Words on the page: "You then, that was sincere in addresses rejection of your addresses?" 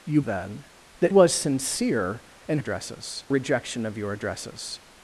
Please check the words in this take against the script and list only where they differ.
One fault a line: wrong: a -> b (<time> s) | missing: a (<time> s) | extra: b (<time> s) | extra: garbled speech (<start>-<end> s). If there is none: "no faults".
no faults